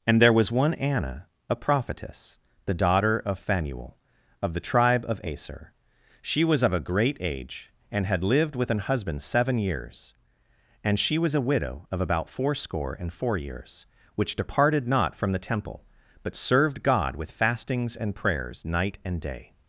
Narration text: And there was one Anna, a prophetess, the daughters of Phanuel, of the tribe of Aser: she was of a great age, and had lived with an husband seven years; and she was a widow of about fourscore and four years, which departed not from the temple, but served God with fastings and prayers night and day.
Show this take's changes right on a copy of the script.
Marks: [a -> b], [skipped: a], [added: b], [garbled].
And there was one Anna, a prophetess, the [daughters -> daughter] of Phanuel, of the tribe of Aser: she was of a great age, and had lived with an husband seven years; and she was a widow of about fourscore and four years, which departed not from the temple, but served God with fastings and prayers night and day.